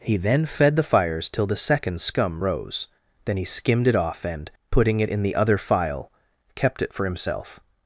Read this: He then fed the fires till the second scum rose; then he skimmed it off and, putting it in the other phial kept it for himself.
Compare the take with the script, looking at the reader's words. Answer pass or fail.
pass